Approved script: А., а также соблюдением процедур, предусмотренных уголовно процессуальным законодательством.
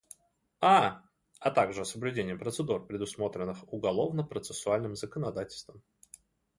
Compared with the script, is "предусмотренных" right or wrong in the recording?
right